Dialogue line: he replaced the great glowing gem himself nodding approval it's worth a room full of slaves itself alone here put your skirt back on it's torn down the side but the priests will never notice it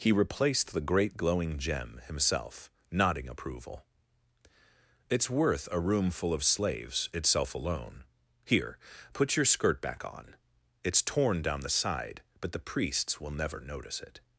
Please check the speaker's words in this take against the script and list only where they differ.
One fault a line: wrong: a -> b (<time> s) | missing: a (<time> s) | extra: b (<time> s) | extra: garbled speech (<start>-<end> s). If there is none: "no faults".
no faults